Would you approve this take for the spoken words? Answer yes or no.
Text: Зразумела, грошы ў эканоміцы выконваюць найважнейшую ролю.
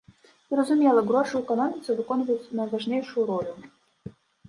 yes